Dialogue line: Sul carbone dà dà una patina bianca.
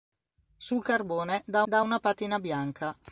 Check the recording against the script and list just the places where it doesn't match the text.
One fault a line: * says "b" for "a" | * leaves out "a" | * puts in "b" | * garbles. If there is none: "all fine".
all fine